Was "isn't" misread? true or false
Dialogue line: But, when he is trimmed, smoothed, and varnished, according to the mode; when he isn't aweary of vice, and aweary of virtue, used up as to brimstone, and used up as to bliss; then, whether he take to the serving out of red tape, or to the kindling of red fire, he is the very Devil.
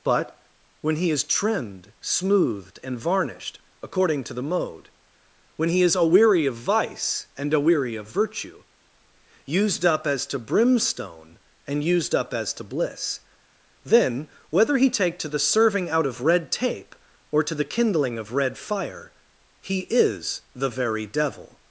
true